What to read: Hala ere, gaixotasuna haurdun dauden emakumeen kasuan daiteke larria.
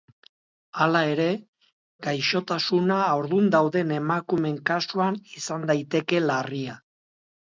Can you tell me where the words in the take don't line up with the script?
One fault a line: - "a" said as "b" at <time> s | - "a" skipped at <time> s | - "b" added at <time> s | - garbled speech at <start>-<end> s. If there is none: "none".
- "izan" added at 5.4 s